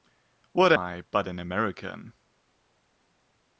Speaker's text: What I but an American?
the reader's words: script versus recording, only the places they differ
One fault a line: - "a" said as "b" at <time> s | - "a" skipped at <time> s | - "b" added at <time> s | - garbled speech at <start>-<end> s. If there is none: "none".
none